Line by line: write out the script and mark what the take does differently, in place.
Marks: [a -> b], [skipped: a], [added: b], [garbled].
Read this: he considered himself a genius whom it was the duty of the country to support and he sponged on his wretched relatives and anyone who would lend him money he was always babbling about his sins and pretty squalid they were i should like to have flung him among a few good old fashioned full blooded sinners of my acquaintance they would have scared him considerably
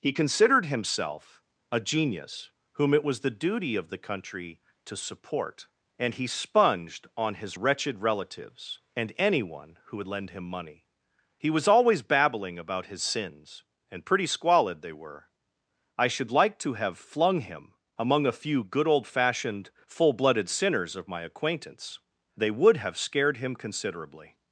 he considered himself a genius whom it was the duty of the country to support and he sponged on his wretched relatives and anyone who would lend him money he was always babbling about his sins and pretty squalid they were i should like to have flung him among a few good old fashioned full blooded sinners of my acquaintance they would have scared him considerably